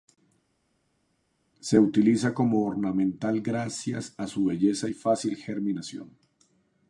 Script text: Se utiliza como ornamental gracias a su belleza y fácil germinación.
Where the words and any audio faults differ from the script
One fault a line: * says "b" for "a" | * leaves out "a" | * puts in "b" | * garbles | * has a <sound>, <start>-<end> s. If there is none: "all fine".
all fine